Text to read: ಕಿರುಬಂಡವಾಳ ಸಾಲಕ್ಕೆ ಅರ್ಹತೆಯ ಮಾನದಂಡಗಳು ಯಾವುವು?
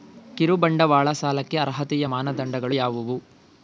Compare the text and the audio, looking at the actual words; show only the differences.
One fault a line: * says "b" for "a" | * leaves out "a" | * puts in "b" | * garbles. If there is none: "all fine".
all fine